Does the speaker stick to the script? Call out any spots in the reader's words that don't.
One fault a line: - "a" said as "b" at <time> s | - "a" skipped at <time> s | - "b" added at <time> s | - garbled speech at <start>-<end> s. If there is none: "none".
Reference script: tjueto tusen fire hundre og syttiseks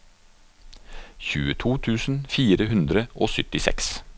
none